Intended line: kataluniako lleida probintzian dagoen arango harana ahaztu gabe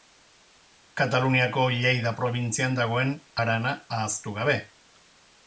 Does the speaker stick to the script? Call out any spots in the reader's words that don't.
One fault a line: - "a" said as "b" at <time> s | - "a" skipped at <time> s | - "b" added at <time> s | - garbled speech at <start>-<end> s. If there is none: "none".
- "arango" skipped at 3.1 s